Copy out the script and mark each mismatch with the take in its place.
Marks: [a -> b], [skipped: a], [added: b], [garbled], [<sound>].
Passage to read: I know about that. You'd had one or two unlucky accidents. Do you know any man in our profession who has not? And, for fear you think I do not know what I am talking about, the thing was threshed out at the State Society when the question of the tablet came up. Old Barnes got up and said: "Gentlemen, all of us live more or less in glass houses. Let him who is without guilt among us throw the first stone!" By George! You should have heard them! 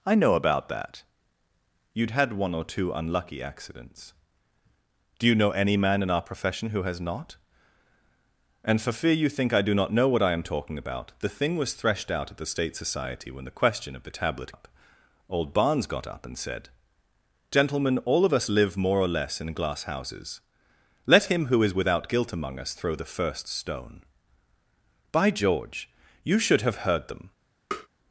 I know about that. You'd had one or two unlucky accidents. Do you know any man in our profession who has not? And, for fear you think I do not know what I am talking about, the thing was threshed out at the State Society when the question of the tablet [skipped: came] up. Old Barnes got up and said: "Gentlemen, all of us live more or less in glass houses. Let him who is without guilt among us throw the first stone!" By George! You should have heard them! [tap]